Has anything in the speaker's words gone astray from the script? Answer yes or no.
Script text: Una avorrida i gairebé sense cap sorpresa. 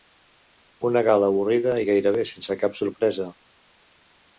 yes